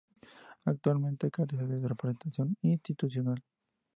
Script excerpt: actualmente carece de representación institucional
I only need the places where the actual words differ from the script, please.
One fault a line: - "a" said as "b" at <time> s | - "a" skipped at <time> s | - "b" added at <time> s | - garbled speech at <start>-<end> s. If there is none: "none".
none